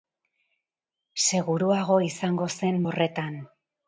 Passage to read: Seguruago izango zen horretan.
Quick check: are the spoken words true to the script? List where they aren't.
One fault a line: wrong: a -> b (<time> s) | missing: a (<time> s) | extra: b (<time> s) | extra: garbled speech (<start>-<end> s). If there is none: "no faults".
no faults